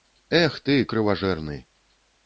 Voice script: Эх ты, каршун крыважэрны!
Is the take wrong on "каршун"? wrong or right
wrong